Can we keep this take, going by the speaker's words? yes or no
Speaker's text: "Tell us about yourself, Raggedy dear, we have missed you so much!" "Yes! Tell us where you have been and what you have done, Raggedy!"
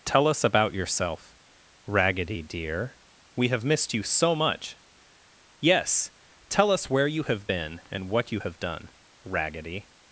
yes